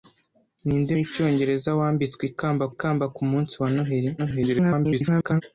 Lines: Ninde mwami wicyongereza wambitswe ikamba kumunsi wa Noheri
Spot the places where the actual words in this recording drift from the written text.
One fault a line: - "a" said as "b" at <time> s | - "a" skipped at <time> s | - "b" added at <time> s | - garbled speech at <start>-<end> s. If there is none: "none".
- "mwami" skipped at 0.9 s
- "ikamba" added at 2.7 s
- garbled speech at 4.2-5.4 s